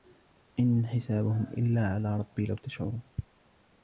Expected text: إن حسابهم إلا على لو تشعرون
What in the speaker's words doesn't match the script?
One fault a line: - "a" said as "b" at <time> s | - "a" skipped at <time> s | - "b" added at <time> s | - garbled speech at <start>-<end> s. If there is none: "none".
- "ربي" added at 2.2 s